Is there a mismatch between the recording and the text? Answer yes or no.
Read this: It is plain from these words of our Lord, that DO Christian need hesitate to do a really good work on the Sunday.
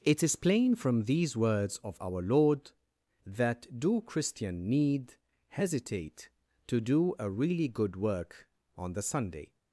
no